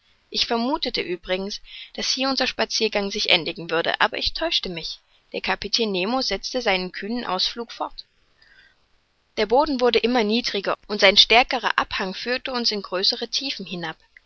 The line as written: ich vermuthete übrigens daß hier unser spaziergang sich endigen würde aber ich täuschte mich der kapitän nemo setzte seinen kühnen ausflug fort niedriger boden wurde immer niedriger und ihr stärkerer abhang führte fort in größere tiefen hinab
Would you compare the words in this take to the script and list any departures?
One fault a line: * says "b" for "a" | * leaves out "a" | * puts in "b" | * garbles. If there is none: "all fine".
* says "der" for "niedriger"
* says "sein" for "ihr"
* says "uns" for "fort"